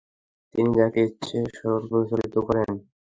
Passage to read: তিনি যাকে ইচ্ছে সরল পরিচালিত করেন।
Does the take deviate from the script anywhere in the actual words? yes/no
no